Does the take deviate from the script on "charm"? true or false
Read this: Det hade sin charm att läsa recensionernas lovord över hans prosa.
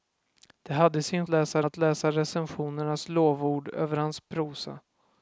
true